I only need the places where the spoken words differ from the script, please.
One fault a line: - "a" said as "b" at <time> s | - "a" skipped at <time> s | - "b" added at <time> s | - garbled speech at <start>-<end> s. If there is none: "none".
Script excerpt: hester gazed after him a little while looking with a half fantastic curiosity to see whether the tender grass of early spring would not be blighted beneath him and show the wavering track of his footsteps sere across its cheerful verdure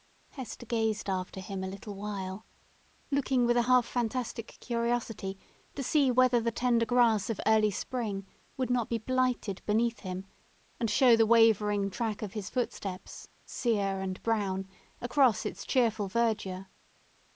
- "and brown" added at 14.0 s